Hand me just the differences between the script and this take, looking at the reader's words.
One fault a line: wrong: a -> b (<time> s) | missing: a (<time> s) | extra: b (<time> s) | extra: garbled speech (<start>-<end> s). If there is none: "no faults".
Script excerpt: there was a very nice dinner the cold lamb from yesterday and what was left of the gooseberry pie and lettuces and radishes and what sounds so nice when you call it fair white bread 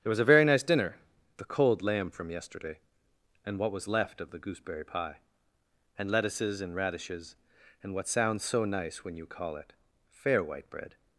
no faults